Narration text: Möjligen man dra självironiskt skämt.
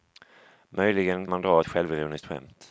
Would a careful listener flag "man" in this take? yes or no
no